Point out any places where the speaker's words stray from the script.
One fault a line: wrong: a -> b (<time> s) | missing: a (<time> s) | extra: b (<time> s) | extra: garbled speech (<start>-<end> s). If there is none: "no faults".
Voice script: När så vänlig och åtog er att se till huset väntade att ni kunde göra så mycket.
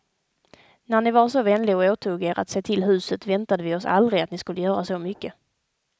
extra: ni var (1.0 s)
extra: vi oss aldrig (3.6 s)
wrong: kunde -> skulle (4.4 s)